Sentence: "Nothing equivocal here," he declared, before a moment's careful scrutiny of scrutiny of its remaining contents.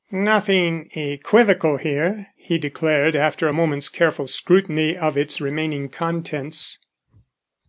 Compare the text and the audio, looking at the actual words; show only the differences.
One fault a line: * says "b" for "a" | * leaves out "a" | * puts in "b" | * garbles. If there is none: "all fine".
* says "after" for "before"
* leaves out "scrutiny of"